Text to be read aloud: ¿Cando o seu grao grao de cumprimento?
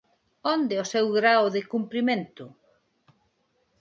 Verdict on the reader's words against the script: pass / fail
fail